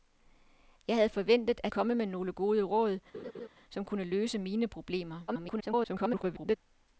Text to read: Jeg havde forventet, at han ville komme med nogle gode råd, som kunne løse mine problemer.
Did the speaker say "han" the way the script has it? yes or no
no